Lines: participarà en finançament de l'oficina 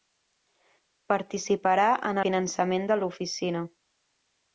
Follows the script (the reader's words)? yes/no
yes